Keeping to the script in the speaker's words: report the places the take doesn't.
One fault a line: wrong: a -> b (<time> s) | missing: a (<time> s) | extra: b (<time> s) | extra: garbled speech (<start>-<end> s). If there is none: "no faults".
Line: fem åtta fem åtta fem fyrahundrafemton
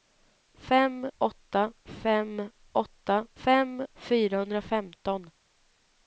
no faults